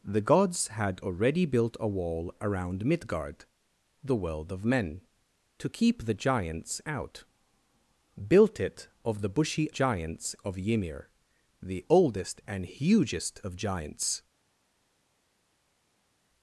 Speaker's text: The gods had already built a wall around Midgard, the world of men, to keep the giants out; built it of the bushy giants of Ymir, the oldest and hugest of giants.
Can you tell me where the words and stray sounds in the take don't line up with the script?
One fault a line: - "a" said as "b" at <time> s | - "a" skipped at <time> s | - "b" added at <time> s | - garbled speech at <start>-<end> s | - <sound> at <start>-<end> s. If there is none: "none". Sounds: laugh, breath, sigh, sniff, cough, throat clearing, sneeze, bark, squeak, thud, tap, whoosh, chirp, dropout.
none